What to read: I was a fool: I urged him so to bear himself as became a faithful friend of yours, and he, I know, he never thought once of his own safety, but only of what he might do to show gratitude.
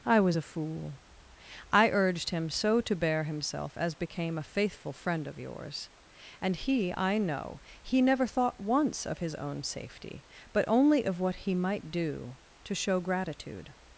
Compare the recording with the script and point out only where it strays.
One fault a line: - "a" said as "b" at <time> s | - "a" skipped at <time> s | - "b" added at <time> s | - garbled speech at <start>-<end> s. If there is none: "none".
none